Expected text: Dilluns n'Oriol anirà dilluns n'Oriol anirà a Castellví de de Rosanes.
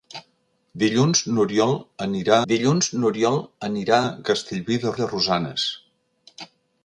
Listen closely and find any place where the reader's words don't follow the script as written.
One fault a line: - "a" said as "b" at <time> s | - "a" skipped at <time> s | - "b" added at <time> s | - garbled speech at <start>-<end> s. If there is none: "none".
none